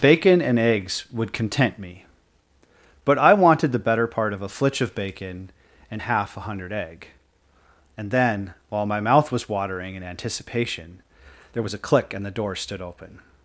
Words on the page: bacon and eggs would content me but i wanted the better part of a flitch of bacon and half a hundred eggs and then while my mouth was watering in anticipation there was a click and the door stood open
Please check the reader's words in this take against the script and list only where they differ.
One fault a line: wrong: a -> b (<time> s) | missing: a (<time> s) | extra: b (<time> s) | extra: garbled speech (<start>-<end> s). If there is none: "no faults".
wrong: eggs -> egg (6.7 s)